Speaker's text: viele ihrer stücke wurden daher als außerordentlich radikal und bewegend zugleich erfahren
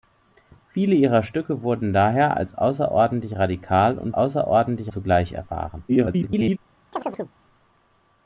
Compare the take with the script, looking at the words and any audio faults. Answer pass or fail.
fail